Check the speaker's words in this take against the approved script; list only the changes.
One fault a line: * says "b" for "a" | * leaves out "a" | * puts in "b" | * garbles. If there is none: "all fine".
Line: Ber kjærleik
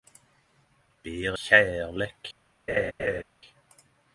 all fine